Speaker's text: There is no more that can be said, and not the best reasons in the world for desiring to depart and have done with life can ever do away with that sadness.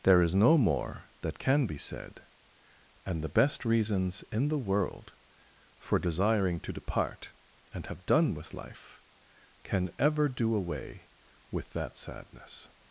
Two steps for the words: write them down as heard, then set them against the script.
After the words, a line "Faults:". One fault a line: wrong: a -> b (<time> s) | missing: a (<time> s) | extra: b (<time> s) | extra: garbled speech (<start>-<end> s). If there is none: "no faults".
There is no more that can be said, and the best reasons in the world for desiring to depart and have done with life can ever do away with that sadness.
Faults:
missing: not (3.2 s)